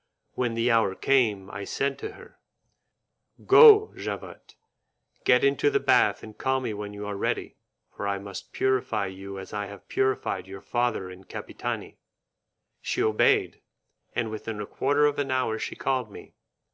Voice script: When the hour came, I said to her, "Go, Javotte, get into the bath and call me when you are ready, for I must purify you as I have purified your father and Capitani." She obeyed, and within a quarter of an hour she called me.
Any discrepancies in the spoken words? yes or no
no